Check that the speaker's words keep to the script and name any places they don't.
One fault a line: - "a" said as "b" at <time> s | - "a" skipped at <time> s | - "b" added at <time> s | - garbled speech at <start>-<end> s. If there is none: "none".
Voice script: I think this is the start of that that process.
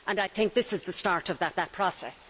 none